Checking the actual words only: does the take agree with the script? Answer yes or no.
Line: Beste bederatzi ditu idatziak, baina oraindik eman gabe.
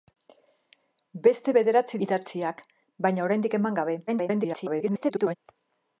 no